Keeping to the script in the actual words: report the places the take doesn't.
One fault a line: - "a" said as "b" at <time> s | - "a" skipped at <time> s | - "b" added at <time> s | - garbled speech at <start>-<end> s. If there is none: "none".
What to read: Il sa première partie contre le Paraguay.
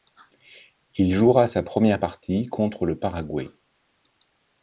- "jouera" added at 1.1 s